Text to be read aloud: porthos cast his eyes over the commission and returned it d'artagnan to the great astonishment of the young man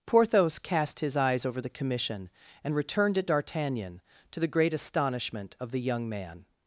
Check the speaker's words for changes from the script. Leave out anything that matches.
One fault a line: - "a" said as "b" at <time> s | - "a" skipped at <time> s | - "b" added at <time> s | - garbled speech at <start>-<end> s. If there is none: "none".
none